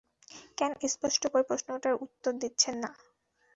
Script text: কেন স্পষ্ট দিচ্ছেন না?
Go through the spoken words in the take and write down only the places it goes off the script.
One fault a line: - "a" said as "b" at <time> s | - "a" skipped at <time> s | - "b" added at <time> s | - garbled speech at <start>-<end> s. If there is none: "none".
- "করে প্রশ্নটার উত্তর" added at 1.3 s